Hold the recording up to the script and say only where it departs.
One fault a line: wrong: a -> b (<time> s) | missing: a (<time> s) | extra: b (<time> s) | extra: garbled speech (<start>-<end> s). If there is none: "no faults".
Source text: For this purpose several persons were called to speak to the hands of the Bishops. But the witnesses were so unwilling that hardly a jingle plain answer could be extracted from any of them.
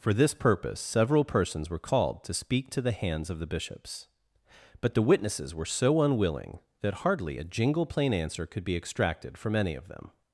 no faults